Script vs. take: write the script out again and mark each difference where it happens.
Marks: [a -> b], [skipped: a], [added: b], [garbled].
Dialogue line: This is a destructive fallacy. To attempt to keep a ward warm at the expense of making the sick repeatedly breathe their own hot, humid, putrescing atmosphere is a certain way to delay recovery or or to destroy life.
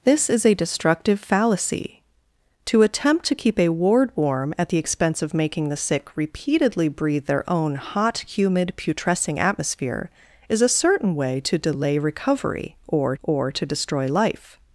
This is a destructive fallacy. To attempt to keep a ward warm at the expense of making the sick repeatedly breathe their own hot, humid, putrescing atmosphere is a certain way to delay recovery or or to destroy life.